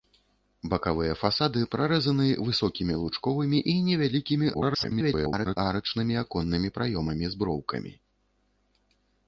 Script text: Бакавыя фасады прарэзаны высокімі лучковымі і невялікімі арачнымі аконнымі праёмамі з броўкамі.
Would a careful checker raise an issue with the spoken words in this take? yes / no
yes